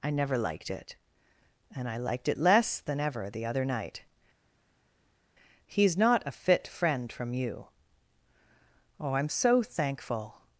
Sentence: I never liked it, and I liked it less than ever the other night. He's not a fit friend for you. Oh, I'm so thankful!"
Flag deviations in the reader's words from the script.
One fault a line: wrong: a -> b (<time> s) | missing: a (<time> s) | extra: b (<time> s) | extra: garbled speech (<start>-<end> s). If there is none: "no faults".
wrong: for -> from (7.1 s)